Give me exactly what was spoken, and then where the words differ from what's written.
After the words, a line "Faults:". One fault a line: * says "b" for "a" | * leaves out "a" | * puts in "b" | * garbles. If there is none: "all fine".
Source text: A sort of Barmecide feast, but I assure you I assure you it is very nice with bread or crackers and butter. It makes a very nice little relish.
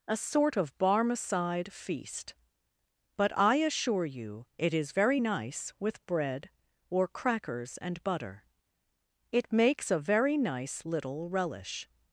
A sort of Barmecide feast, but I assure you it is very nice with bread or crackers and butter. It makes a very nice little relish.
Faults:
* leaves out "I assure you"